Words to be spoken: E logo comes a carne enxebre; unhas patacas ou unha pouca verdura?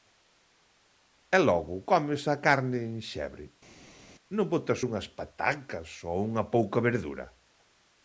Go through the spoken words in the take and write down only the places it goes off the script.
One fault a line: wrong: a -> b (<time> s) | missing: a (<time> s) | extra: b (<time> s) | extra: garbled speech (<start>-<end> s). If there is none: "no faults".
extra: non botas (4.3 s)